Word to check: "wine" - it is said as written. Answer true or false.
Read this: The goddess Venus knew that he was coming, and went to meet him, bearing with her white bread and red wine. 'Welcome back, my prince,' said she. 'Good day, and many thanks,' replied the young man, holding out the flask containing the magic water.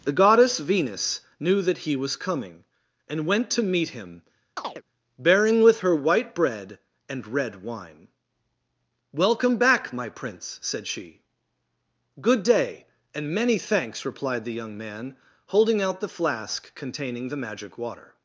true